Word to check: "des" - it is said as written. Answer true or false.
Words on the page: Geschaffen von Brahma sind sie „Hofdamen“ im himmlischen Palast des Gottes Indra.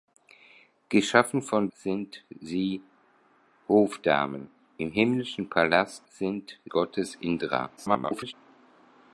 false